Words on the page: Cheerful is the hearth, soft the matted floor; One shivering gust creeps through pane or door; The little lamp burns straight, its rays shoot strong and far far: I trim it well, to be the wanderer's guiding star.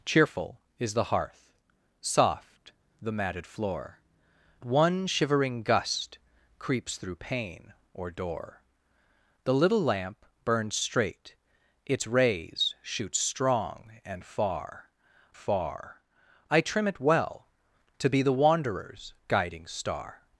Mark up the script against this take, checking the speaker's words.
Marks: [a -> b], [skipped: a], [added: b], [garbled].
Cheerful is the hearth, soft the matted floor; One shivering gust creeps through pane or door; The little lamp burns straight, its rays shoot strong and far far: I trim it well, to be the wanderer's guiding star.